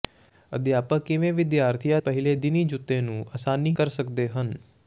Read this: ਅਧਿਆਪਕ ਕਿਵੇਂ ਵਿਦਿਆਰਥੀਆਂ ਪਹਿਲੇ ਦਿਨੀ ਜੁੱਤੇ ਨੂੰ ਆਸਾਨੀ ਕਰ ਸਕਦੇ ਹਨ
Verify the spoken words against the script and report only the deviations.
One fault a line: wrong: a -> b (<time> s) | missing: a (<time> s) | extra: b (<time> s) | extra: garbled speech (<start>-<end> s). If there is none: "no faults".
no faults